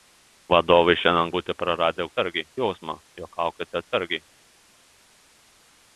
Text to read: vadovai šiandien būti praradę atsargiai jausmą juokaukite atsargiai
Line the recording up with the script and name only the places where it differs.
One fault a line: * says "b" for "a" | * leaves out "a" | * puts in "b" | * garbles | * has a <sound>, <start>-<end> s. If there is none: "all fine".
all fine